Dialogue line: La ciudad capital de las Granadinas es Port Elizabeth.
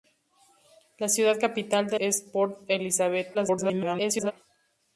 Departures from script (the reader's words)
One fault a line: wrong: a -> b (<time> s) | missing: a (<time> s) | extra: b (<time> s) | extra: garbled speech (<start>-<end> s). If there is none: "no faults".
missing: las Granadinas (2.0 s)
extra: garbled speech (3.3-4.3 s)